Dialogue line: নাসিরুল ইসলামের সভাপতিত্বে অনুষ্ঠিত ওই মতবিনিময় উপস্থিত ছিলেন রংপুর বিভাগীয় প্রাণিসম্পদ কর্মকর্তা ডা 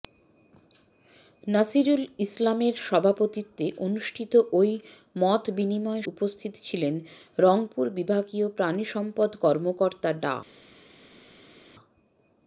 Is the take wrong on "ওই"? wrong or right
right